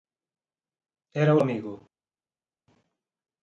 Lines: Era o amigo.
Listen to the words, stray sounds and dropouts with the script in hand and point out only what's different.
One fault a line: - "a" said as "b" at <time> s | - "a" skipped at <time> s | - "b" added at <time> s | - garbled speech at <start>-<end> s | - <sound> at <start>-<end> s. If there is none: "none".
none